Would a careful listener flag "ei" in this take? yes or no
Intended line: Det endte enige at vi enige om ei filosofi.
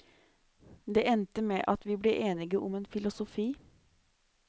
yes